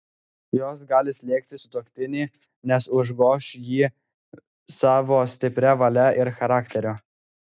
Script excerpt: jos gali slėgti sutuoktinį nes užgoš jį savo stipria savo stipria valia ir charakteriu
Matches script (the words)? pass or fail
fail